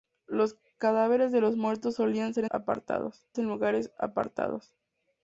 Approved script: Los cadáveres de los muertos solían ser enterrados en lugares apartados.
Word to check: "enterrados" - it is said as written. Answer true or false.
false